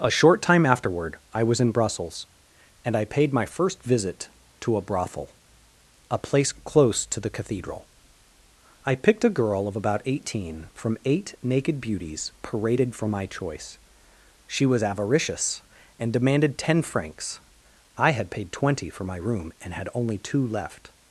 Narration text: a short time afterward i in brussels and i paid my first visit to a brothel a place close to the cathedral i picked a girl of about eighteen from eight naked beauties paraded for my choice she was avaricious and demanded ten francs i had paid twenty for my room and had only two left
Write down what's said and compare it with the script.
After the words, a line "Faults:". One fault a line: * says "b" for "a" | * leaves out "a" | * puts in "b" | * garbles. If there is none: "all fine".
a short time afterward i was in brussels and i paid my first visit to a brothel a place close to the cathedral i picked a girl of about eighteen from eight naked beauties paraded for my choice she was avaricious and demanded ten francs i had paid twenty for my room and had only two left
Faults:
* puts in "was"